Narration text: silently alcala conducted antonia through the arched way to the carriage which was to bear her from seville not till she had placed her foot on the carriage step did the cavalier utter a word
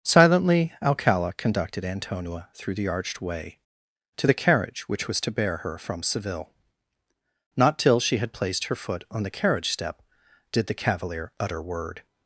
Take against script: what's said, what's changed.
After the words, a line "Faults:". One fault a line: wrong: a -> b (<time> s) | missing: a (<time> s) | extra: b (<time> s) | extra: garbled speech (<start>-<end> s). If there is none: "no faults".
silently alcala conducted antonia through the arched way to the carriage which was to bear her from seville not till she had placed her foot on the carriage step did the cavalier utter word
Faults:
missing: a (11.6 s)